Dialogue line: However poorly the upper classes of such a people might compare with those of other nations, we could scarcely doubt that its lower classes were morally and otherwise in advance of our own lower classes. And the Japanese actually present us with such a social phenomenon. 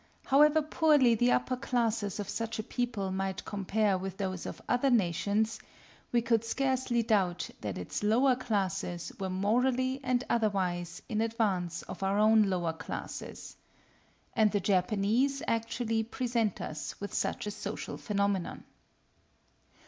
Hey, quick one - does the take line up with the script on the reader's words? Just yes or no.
yes